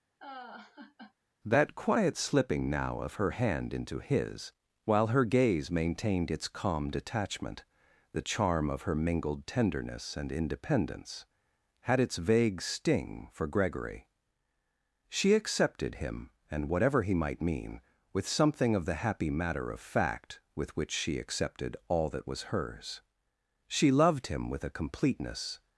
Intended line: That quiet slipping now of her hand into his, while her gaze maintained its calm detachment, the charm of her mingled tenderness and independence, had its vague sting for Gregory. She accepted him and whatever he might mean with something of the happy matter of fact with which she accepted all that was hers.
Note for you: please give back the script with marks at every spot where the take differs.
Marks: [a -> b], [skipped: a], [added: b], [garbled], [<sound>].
[laugh] That quiet slipping now of her hand into his, while her gaze maintained its calm detachment, the charm of her mingled tenderness and independence, had its vague sting for Gregory. She accepted him and whatever he might mean with something of the happy matter of fact with which she accepted all that was hers. [added: She loved him with a completeness]